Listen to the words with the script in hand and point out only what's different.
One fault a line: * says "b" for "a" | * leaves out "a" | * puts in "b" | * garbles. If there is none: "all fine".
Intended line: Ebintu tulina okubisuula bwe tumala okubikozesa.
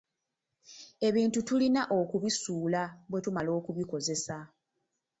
all fine